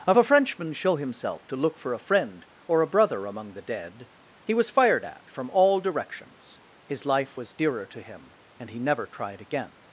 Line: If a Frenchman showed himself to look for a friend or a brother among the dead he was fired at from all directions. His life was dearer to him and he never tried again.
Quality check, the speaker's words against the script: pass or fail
fail